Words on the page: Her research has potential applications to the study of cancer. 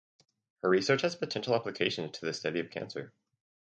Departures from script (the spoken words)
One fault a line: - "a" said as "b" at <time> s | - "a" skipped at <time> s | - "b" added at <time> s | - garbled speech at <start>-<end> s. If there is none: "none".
none